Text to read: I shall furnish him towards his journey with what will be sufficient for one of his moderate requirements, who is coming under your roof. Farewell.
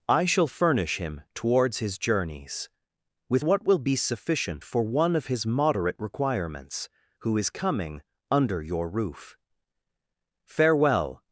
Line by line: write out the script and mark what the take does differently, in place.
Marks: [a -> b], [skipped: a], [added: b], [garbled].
I shall furnish him towards his [journey -> journeys] with what will be sufficient for one of his moderate requirements, who is coming under your roof. Farewell.